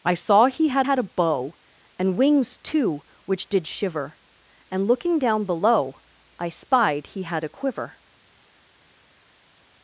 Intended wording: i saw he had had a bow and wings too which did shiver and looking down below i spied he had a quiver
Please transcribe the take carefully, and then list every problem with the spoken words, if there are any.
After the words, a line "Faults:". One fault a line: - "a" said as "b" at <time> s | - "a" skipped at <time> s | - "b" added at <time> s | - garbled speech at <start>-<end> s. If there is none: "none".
i saw he had had a bow and wings too which did shiver and looking down below i spied he had a quiver
Faults:
none